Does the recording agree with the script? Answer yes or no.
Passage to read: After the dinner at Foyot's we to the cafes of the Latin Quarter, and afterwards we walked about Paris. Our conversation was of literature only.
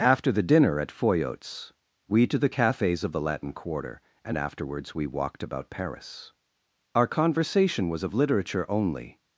yes